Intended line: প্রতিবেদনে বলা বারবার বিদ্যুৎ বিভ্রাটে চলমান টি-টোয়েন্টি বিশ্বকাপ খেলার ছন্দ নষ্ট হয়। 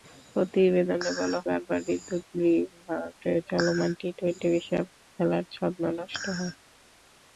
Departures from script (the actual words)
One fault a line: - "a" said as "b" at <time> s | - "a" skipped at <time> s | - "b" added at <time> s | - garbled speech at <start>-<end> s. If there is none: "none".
none